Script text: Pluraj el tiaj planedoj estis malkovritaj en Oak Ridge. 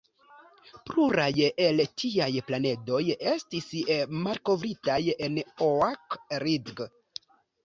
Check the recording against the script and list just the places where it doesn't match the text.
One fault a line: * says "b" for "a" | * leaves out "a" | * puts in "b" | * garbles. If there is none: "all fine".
all fine